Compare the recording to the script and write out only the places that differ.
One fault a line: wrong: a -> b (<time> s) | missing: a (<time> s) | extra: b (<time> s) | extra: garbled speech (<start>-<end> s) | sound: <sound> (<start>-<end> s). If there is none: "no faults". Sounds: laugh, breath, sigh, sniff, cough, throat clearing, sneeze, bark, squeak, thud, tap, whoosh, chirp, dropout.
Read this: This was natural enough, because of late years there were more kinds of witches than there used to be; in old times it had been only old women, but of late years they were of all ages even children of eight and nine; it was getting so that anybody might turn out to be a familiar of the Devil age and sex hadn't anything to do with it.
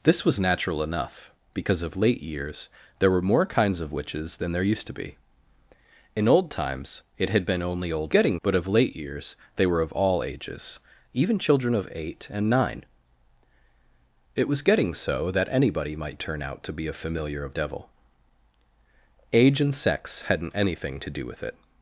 wrong: women -> getting (8.1 s)
missing: the (17.6 s)